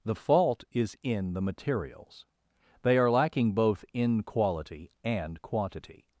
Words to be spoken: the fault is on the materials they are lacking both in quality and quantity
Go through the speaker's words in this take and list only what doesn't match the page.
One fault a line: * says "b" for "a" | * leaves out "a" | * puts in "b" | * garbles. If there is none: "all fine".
* says "in" for "on"